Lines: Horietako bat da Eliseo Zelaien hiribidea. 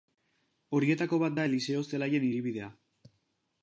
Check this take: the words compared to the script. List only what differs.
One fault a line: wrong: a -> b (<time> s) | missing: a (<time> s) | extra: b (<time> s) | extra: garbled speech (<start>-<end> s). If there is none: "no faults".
no faults